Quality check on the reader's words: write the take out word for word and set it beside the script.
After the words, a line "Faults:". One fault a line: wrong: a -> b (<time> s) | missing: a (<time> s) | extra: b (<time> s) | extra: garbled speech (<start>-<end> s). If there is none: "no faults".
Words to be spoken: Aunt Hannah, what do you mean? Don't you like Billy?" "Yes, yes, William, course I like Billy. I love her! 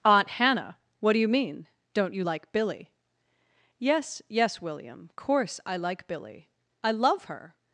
Aunt Hannah, what do you mean? Don't you like Billy?" "Yes, yes, William, course I like Billy. I love her!
Faults:
no faults